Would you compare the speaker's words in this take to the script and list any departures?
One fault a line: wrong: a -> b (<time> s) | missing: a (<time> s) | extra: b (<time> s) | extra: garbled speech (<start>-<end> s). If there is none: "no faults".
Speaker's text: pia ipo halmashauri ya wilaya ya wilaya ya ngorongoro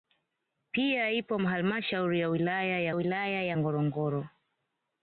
no faults